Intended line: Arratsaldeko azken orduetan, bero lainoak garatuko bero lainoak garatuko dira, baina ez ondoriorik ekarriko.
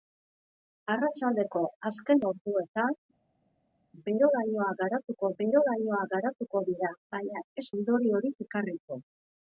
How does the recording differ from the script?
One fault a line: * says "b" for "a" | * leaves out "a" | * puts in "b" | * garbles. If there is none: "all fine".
all fine